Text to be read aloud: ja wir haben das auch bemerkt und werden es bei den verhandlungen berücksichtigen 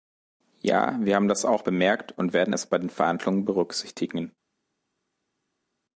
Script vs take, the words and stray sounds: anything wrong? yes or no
no